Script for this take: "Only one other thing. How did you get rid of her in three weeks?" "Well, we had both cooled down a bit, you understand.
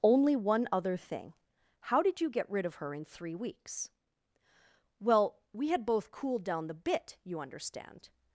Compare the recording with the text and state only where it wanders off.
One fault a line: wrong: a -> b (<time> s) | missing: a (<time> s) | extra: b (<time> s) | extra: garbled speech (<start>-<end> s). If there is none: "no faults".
wrong: a -> the (6.7 s)